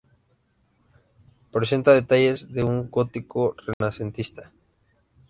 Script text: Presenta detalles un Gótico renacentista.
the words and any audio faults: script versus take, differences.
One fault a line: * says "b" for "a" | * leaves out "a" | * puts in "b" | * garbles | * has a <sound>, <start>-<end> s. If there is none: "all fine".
* puts in "de"
* has a dropout, 3.7-3.8 s